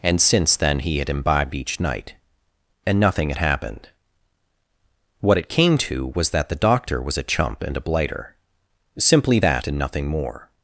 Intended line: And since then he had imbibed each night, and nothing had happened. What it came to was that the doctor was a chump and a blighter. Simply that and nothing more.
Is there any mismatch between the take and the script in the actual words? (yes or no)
no